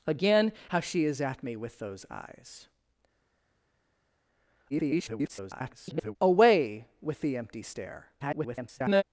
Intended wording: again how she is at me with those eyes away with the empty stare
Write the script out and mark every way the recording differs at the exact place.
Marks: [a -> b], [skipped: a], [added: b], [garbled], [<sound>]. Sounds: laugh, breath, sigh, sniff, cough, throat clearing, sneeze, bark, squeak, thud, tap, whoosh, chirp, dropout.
again how she is at me with those eyes [garbled] away with the empty stare [garbled]